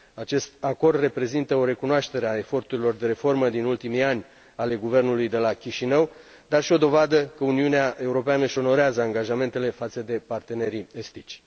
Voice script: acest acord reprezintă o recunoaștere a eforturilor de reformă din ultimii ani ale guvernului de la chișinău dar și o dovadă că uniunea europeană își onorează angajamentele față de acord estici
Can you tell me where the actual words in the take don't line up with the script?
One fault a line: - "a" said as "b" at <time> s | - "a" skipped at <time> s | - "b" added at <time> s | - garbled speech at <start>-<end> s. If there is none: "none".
- "acord" said as "partenerii" at 10.3 s